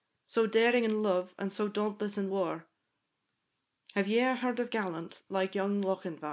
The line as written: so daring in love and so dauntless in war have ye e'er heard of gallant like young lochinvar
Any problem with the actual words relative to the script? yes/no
no